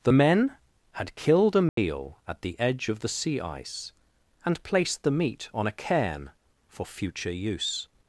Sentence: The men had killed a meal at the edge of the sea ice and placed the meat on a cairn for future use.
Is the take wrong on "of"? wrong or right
right